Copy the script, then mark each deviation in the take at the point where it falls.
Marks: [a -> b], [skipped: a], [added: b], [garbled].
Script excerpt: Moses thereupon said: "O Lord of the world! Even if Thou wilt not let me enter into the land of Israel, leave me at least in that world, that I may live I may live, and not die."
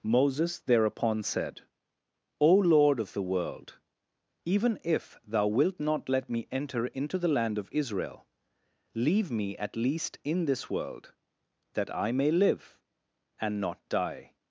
Moses thereupon said: "O Lord of the world! Even if Thou wilt not let me enter into the land of Israel, leave me at least in [that -> this] world, that I may live [skipped: I may live,] and not die."